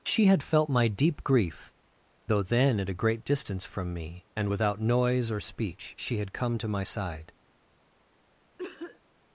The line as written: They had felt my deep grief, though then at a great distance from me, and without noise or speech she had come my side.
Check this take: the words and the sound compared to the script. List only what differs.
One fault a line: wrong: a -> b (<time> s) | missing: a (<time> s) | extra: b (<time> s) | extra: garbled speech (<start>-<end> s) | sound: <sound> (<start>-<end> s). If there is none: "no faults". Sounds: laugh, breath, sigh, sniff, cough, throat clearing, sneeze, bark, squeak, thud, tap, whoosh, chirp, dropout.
wrong: They -> She (0.1 s)
extra: to (6.6 s)
sound: cough (8.6-9.0 s)